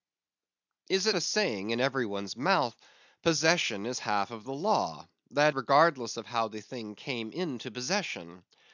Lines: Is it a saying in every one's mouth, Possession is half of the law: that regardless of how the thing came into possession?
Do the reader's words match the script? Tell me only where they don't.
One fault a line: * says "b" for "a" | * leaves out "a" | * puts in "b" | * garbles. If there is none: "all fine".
all fine